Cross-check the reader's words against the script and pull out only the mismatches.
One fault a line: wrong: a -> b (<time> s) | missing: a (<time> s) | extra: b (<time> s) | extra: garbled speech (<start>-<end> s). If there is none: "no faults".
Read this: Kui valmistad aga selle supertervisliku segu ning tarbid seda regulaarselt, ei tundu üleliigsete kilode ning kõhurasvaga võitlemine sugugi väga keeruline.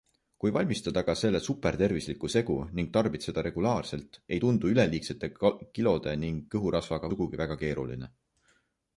missing: võitlemine (7.1 s)